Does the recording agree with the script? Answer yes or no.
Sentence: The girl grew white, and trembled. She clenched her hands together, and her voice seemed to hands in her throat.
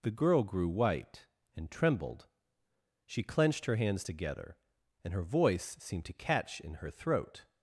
no